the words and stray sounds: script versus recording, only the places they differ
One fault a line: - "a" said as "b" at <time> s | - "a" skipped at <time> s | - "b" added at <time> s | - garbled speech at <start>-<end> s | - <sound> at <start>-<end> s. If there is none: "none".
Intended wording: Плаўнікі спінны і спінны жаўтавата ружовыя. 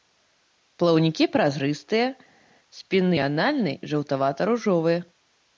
- "празрыстыя" added at 1.4 s
- "спінны" said as "анальны" at 3.3 s